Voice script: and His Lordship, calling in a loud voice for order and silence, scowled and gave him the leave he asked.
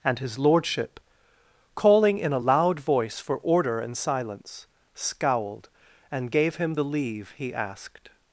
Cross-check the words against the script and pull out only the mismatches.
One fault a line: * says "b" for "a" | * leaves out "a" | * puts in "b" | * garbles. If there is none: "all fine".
all fine